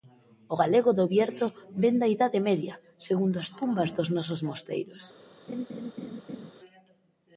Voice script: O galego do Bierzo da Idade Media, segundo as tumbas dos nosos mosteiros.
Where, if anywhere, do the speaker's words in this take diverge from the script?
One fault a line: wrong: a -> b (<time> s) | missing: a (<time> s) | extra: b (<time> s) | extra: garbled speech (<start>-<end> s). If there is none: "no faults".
extra: vén (1.8 s)